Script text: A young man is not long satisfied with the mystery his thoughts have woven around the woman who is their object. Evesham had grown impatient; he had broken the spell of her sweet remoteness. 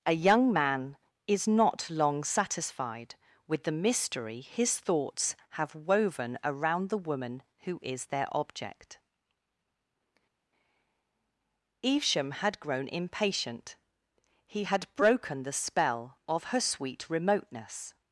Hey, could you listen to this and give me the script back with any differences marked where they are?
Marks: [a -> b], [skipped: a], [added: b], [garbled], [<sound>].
A young man is not long satisfied with the mystery his thoughts have woven around the woman who is their object. Evesham had grown impatient; he had broken the spell of her sweet remoteness.